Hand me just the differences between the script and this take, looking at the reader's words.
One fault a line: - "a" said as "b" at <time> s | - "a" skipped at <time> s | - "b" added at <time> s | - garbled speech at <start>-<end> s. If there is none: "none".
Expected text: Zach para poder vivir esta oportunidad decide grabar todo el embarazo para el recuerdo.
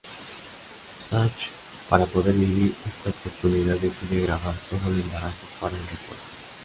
none